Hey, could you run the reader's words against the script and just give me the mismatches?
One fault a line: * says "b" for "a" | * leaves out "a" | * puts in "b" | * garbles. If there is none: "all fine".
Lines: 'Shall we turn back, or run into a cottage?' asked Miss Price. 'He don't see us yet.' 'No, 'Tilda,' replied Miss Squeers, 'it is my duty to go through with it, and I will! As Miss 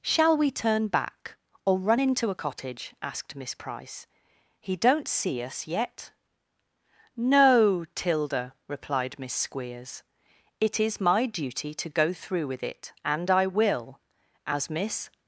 all fine